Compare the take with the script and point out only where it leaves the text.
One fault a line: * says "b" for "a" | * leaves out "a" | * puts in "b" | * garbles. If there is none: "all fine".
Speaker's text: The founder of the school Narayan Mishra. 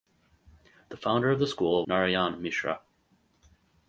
all fine